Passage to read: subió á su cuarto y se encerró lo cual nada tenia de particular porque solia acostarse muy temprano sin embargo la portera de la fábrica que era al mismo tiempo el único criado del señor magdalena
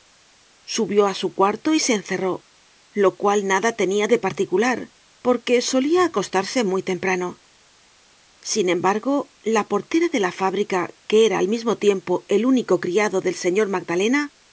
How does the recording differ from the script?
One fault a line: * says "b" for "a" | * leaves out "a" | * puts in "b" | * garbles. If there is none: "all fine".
all fine